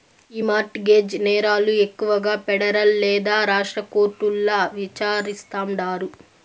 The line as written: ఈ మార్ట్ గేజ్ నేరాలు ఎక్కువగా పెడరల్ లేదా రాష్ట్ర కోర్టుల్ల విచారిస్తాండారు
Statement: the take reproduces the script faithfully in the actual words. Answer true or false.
true